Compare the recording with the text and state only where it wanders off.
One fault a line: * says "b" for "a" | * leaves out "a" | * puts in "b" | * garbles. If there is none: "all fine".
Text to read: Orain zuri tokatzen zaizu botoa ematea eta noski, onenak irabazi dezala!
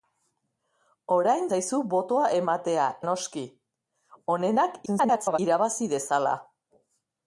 * leaves out "zuri tokatzen"
* leaves out "eta"
* garbles